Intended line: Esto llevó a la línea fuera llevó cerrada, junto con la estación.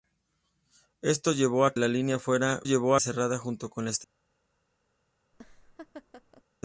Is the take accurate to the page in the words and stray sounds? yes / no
no